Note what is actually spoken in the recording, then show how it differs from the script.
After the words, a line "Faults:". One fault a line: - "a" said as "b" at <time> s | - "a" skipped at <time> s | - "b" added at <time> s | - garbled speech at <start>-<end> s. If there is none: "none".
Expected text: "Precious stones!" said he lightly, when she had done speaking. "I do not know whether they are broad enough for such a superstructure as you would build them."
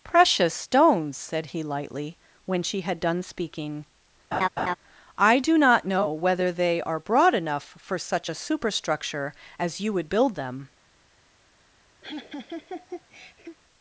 "Precious stones!" said he lightly, when she had done speaking. "I do not know whether they are broad enough for such a superstructure as you would build them."
Faults:
none